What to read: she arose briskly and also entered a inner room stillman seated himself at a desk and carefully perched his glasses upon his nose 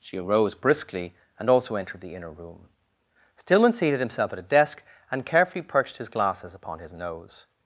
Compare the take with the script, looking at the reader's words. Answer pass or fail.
fail